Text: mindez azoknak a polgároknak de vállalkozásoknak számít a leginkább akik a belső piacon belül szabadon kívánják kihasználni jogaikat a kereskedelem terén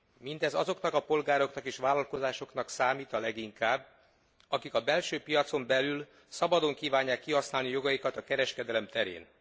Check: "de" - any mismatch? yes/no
yes